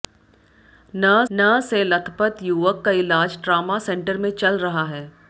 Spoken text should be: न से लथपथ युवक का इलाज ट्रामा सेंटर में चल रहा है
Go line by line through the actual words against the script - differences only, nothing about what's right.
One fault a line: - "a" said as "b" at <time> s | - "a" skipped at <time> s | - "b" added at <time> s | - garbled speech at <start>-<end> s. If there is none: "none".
- "न" added at 1.3 s